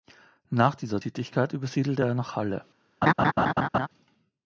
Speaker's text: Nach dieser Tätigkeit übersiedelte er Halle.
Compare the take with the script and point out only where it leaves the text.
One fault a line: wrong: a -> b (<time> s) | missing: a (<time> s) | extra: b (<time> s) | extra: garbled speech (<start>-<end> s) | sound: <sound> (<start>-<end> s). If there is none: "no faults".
extra: nach (2.1 s)
sound: laugh (3.0-3.9 s)